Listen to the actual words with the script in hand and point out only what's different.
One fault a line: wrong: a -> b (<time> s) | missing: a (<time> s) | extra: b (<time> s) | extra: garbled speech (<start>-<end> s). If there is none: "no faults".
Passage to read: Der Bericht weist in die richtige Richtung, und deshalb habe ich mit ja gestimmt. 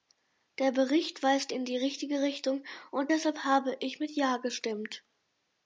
no faults